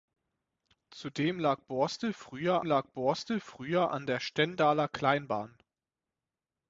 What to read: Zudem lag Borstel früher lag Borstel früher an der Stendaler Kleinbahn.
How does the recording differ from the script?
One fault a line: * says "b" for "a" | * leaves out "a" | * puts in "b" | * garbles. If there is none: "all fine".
all fine